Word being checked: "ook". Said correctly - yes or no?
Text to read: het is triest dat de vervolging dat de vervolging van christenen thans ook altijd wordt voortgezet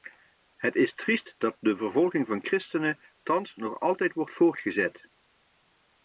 no